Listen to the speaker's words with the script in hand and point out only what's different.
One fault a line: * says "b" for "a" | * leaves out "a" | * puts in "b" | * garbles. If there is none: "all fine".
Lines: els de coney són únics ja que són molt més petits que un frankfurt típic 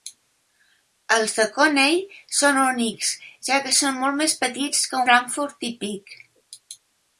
* leaves out "un"